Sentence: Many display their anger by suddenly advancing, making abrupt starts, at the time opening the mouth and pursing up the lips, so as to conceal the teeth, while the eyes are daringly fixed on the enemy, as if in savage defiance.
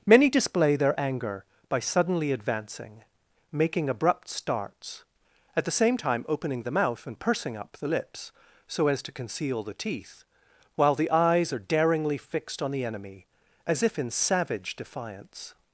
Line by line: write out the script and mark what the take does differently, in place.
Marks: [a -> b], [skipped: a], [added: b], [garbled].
Many display their anger by suddenly advancing, making abrupt starts, at the [added: same] time opening the mouth and pursing up the lips, so as to conceal the teeth, while the eyes are daringly fixed on the enemy, as if in savage defiance.